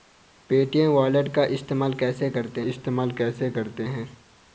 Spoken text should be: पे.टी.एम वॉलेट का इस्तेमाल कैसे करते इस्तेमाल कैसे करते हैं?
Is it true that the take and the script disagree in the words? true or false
false